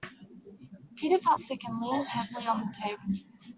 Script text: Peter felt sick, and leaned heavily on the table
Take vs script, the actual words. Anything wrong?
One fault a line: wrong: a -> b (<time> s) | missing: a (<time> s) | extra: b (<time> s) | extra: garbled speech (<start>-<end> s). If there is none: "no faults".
no faults